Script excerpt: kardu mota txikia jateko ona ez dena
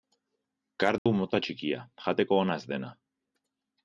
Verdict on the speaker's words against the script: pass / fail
pass